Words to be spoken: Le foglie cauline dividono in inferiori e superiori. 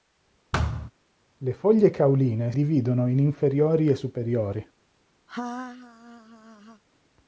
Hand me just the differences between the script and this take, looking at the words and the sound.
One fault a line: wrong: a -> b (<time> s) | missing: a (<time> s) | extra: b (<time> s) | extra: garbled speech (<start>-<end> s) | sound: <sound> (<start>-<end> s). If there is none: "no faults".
sound: thud (0.5-0.9 s)
sound: laugh (5.3-6.8 s)